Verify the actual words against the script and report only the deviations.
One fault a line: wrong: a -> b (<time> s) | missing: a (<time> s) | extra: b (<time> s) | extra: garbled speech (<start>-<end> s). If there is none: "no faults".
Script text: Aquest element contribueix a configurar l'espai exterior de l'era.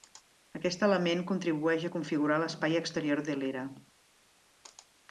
no faults